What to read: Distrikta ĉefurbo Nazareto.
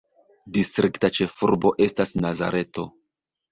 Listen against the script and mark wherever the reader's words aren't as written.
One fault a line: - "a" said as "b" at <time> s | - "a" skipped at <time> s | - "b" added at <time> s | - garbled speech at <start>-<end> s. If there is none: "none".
- "estas" added at 1.9 s